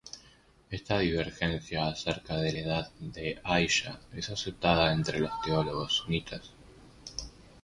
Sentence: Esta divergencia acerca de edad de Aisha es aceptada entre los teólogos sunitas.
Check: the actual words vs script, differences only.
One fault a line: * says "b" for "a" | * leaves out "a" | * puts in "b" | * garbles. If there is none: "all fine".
all fine